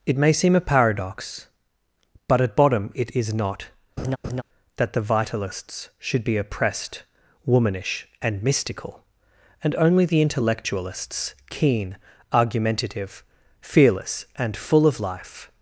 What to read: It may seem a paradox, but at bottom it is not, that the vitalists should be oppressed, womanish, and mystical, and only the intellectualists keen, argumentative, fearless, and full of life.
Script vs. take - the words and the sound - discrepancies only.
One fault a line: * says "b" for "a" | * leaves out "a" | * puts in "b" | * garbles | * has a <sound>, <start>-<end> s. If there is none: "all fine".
* has a laugh, 4.0-4.4 s